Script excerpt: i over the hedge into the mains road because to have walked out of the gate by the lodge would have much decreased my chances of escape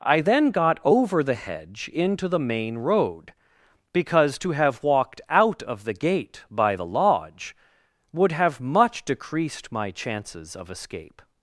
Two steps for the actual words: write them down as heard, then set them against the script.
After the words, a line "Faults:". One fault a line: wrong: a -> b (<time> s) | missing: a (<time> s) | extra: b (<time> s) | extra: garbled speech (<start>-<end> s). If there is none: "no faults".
i then got over the hedge into the main road because to have walked out of the gate by the lodge would have much decreased my chances of escape
Faults:
extra: then got (0.2 s)
wrong: mains -> main (2.4 s)